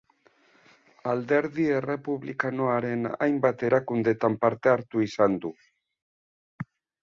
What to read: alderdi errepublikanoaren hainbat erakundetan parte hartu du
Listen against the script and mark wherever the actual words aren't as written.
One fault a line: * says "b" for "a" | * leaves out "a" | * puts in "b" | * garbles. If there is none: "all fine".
* puts in "izan"